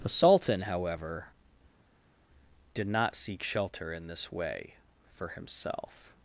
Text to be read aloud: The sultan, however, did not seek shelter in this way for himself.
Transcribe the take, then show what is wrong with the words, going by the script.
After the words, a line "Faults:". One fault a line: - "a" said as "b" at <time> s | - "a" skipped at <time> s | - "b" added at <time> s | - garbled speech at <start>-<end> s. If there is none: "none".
The sultan, however, did not seek shelter in this way for himself.
Faults:
none